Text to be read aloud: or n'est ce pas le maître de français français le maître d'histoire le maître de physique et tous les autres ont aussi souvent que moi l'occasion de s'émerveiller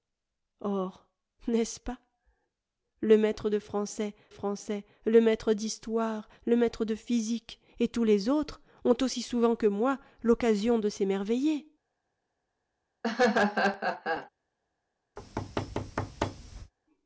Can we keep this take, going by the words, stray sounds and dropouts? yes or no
no